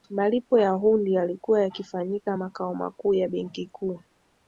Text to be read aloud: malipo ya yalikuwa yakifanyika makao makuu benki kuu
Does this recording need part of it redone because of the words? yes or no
yes